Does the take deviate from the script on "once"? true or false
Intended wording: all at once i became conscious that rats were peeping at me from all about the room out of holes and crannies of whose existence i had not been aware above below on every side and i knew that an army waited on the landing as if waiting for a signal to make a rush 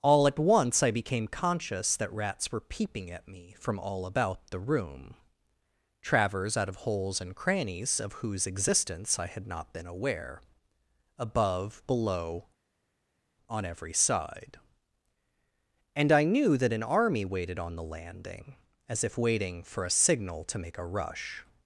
false